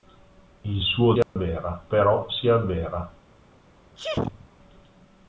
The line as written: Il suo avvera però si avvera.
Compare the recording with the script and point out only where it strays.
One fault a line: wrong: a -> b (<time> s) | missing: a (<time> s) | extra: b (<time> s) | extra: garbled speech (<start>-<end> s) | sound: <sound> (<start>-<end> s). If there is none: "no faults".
sound: dropout (1.2-1.4 s)
sound: sneeze (4.0-4.5 s)